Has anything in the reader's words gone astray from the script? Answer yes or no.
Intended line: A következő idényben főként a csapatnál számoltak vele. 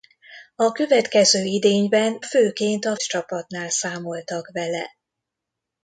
no